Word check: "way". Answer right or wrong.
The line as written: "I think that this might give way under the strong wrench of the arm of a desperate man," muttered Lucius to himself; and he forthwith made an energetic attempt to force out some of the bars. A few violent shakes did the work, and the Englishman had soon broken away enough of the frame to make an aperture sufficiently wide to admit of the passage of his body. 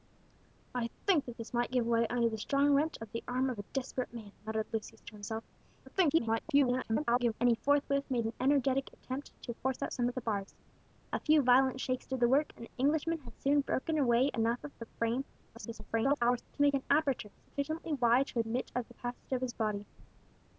right